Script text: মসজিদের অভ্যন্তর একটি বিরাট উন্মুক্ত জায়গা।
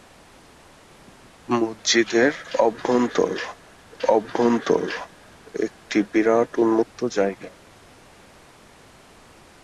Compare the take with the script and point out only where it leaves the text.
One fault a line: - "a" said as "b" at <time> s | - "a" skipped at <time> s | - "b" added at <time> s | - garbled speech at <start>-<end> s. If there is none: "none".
- "অভ্যন্তর" added at 4.1 s